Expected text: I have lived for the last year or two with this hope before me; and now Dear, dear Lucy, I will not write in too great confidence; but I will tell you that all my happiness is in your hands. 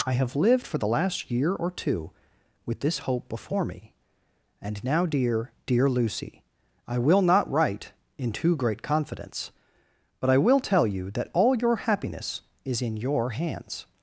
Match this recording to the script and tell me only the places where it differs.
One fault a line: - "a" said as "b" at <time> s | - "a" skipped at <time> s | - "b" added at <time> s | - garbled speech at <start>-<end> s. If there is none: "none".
- "my" said as "your" at 11.5 s